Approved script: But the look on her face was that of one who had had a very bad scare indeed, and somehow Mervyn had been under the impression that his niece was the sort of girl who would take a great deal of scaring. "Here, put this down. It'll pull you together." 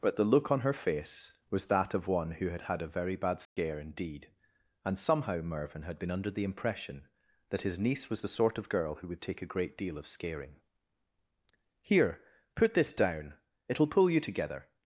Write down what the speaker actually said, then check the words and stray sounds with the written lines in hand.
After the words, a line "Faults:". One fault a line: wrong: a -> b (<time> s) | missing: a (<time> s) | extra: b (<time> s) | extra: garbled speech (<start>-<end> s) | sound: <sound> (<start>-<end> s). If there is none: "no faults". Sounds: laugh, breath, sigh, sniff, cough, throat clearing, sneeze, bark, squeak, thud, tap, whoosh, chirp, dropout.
But the look on her face was that of one who had had a very bad scare indeed, and somehow Mervyn had been under the impression that his niece was the sort of girl who would take a great deal of scaring. "Here, put this down. It'll pull you together."
Faults:
sound: dropout (3.4-3.6 s)